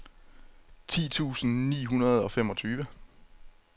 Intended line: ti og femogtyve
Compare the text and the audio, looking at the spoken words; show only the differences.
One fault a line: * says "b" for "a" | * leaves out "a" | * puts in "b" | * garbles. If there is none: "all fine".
* puts in "tusind ni hundrede"